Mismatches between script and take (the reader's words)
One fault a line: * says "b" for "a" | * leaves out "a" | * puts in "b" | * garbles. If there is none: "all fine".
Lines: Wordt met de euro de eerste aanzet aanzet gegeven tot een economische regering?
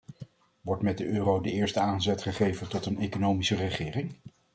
* leaves out "aanzet"